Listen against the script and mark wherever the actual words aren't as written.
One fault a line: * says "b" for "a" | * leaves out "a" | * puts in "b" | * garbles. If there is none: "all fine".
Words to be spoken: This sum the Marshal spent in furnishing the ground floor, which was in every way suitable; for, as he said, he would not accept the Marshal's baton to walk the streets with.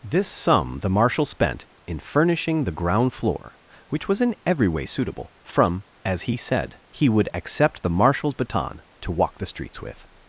* says "from" for "for"
* leaves out "not"